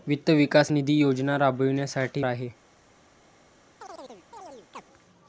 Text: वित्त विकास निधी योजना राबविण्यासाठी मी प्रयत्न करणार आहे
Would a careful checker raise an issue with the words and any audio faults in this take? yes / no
yes